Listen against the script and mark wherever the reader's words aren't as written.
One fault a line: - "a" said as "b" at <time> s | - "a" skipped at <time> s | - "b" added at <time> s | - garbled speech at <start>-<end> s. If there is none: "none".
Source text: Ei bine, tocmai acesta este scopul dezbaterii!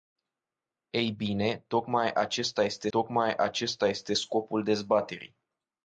- "tocmai acesta este" added at 2.9 s